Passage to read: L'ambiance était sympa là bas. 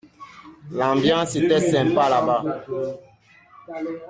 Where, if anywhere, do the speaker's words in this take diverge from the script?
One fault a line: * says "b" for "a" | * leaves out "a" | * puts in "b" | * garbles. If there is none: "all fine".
all fine